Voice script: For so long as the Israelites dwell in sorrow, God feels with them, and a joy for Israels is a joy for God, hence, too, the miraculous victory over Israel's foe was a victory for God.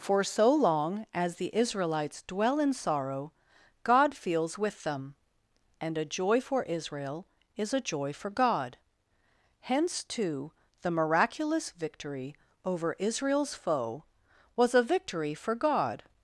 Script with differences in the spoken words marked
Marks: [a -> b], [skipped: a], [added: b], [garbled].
For so long as the Israelites dwell in sorrow, God feels with them, and a joy for [Israels -> Israel] is a joy for God, hence, too, the miraculous victory over Israel's foe was a victory for God.